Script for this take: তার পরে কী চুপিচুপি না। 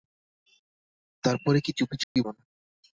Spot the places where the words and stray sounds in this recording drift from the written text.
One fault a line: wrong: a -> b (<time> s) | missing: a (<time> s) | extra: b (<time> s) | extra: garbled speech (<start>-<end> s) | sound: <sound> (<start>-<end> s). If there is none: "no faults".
sound: dropout (2.0-2.2 s)